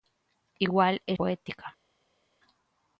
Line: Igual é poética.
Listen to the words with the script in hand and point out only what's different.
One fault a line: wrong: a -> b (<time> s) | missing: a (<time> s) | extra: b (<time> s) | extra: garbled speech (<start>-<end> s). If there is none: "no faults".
no faults